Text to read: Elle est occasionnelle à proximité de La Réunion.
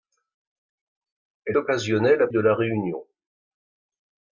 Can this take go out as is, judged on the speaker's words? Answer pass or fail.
fail